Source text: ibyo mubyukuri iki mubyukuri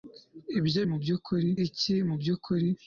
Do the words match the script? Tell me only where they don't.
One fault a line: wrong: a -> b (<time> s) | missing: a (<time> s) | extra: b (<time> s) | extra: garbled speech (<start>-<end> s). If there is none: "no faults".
no faults